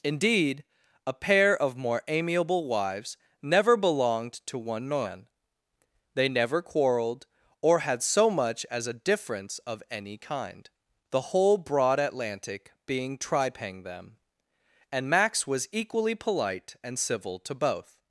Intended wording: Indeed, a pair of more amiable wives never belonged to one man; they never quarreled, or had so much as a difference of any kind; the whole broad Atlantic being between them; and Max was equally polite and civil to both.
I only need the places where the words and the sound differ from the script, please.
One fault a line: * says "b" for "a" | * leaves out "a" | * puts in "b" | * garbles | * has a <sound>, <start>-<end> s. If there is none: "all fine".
* says "tripang" for "between"